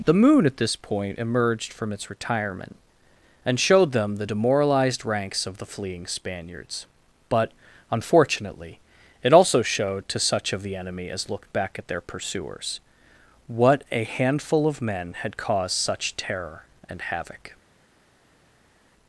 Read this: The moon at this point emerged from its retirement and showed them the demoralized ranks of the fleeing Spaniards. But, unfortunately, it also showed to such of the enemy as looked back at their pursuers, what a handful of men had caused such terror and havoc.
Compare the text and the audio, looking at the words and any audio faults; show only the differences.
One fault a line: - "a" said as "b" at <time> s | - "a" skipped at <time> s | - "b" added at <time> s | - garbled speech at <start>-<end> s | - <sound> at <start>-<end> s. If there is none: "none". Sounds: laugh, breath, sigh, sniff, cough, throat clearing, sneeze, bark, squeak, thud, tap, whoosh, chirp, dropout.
none